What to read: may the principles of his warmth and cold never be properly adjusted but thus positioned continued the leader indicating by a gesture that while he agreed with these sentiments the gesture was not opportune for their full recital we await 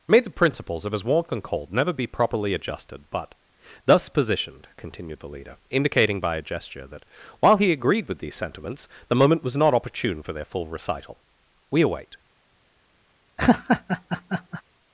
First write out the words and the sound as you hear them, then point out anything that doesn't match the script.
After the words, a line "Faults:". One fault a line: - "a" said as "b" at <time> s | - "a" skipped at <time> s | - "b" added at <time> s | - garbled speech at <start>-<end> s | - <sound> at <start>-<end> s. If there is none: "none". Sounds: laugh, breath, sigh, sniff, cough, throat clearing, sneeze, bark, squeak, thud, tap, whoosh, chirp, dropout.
may the principles of his warmth and cold never be properly adjusted but thus positioned continued the leader indicating by a gesture that while he agreed with these sentiments the moment was not opportune for their full recital we await
Faults:
- "gesture" said as "moment" at 9.2 s
- laugh at 13.4-14.6 s